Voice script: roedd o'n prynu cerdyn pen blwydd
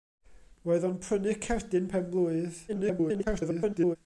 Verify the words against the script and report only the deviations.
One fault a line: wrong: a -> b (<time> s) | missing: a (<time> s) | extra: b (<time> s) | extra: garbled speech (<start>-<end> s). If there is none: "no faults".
extra: garbled speech (2.7-4.0 s)